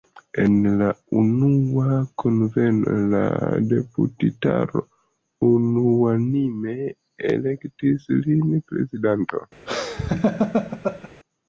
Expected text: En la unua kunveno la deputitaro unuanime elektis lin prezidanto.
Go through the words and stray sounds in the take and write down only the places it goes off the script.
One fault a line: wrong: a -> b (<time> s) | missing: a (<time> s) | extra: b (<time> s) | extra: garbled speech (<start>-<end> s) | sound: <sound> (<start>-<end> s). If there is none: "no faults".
sound: laugh (9.7-11.1 s)